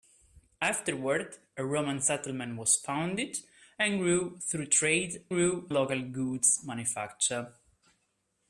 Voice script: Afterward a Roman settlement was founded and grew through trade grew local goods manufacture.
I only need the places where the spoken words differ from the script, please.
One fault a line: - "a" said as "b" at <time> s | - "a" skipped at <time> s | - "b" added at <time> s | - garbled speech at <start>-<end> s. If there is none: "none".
none